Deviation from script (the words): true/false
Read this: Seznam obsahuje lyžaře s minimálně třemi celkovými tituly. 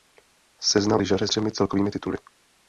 true